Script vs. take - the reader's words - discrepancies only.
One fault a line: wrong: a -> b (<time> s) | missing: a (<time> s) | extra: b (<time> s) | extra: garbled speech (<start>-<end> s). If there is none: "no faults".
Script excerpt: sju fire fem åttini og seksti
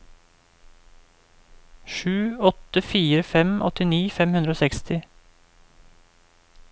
extra: åtte (2.4 s)
extra: fem hundre (4.2 s)